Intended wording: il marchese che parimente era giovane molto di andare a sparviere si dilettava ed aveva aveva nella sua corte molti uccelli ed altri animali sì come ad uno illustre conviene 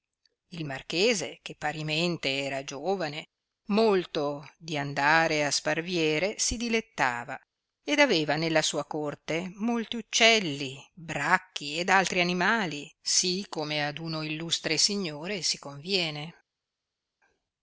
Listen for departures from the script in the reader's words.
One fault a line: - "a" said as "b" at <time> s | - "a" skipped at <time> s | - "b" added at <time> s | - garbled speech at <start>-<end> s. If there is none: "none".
- "aveva" skipped at 8.3 s
- "bracchi" added at 10.9 s
- "signore si" added at 14.8 s